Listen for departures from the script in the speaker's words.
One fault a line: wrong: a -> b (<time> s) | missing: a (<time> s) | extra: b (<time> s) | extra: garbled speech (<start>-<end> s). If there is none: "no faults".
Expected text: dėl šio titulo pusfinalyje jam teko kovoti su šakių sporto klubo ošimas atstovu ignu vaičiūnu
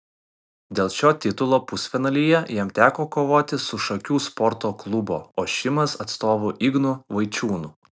no faults